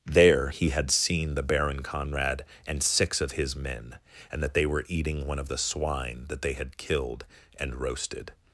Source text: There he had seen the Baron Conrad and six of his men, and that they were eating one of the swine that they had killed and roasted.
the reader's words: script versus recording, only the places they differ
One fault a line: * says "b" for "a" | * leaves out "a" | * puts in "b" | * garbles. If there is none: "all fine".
all fine